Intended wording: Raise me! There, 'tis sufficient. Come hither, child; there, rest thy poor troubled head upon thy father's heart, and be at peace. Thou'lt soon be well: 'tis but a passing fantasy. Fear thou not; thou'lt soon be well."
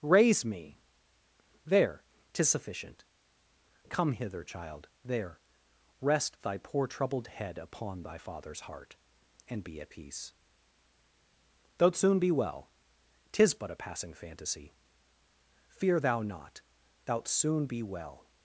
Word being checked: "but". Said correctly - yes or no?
yes